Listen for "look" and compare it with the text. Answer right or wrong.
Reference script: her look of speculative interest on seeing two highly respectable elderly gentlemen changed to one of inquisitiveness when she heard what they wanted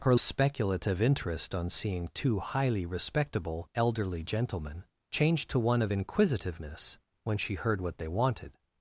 wrong